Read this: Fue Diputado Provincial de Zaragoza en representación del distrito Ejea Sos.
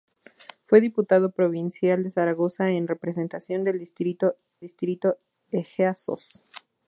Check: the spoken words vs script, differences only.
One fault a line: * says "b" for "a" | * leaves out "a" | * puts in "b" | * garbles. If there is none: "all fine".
* puts in "distrito"